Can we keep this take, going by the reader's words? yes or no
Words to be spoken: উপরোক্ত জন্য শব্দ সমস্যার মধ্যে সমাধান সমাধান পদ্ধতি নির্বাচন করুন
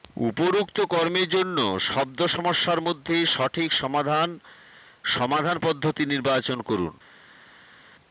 no